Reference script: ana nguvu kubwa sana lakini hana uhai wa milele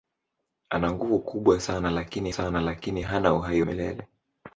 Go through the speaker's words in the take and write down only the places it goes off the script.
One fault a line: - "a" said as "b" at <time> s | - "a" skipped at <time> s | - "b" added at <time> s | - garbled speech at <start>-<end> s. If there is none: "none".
- "sana lakini" added at 2.3 s
- "wa" skipped at 3.6 s